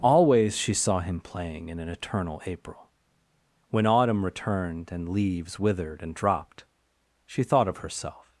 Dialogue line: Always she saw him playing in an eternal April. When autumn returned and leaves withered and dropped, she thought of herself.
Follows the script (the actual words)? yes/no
yes